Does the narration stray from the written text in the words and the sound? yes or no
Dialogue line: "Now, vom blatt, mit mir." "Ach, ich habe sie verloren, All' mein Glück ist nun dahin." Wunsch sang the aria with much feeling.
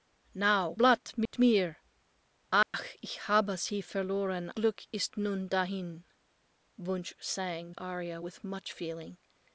yes